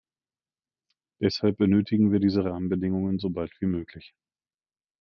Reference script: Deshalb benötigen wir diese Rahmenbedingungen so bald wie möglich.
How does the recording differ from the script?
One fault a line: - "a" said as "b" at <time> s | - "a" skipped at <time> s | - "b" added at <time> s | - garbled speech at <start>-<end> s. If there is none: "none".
none